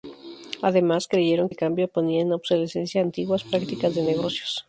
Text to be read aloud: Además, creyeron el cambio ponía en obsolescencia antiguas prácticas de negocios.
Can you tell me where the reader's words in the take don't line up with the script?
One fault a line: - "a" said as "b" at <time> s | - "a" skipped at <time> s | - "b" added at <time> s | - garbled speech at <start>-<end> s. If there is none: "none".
none